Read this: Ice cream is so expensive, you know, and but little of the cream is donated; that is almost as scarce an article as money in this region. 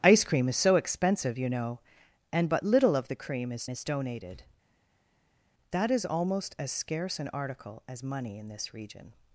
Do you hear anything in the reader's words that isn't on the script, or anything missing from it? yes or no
yes